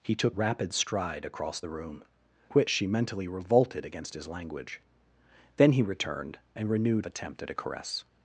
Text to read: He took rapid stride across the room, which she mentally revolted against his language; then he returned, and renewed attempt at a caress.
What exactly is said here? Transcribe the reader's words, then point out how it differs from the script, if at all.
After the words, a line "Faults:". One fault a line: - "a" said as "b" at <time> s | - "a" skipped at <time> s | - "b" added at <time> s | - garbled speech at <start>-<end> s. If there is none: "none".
He took rapid stride across the room, which she mentally revolted against his language; then he returned, and renewed attempt at a caress.
Faults:
none